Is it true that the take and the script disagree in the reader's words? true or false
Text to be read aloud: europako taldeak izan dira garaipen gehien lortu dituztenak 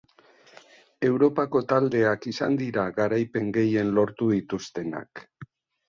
false